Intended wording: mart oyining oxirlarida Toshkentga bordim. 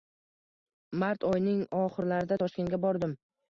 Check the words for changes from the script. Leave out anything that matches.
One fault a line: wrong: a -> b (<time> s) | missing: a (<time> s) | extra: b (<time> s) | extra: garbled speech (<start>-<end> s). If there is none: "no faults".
no faults